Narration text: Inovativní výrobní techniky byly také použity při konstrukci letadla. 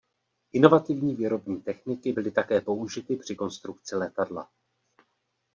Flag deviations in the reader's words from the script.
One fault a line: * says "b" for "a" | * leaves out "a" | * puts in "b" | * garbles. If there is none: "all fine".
all fine